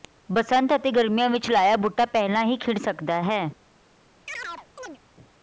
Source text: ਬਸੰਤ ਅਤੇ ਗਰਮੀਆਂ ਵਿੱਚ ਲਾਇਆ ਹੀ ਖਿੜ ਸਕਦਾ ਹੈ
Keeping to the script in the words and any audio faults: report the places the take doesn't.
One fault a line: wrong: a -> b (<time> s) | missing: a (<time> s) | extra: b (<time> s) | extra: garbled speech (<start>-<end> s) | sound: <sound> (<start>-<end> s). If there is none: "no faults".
extra: ਬੂਟਾ ਪਹਿਲਾਂ (1.8 s)
sound: chirp (4.3-5.0 s)